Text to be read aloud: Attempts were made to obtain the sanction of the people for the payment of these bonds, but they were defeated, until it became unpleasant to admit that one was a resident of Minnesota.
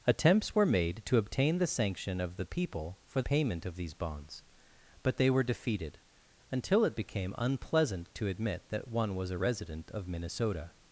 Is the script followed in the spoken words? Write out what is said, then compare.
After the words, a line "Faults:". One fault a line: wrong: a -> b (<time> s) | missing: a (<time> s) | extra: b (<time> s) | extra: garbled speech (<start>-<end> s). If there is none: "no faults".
Attempts were made to obtain the sanction of the people for payment of these bonds, but they were defeated, until it became unpleasant to admit that one was a resident of Minnesota.
Faults:
missing: the (3.2 s)